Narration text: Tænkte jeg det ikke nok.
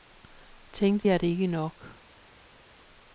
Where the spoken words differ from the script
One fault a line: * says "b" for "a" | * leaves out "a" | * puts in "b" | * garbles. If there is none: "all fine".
all fine